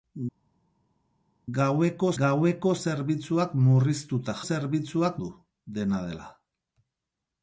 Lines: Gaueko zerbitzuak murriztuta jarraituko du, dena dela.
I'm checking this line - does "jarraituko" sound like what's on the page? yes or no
no